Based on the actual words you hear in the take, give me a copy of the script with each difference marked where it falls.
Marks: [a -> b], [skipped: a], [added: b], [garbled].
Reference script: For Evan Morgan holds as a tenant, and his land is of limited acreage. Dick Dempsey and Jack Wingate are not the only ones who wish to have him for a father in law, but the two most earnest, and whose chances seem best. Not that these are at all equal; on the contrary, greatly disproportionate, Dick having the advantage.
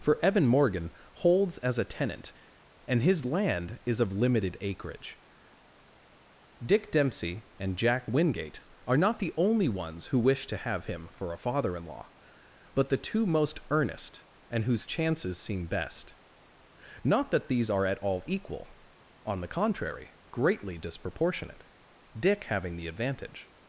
For Evan Morgan holds as a tenant, and his land is of limited acreage. Dick Dempsey and Jack Wingate are not the only ones who wish to have him for a father in law, but the two most earnest, and whose chances seem best. Not that these are at all equal; on the contrary, greatly disproportionate, Dick having the advantage.